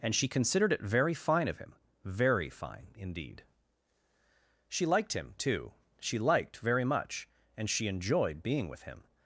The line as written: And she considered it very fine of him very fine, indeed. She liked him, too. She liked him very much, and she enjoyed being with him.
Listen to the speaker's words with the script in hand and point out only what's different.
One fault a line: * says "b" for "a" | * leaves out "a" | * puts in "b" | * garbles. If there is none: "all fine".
* leaves out "him"